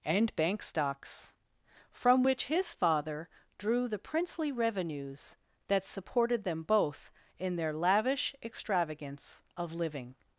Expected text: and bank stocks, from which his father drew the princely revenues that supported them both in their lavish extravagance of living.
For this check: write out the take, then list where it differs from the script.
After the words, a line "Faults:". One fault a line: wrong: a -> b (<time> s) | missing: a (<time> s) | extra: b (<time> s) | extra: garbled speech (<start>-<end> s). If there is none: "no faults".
and bank stocks, from which his father drew the princely revenues that supported them both in their lavish extravagance of living.
Faults:
no faults